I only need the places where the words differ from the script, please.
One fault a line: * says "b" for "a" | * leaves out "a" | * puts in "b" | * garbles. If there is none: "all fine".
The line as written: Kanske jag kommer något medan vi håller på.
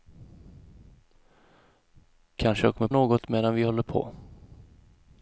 all fine